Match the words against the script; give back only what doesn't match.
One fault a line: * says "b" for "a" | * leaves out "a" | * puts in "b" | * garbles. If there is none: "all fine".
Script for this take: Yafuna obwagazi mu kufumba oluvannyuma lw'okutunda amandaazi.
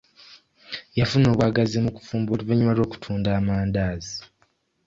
all fine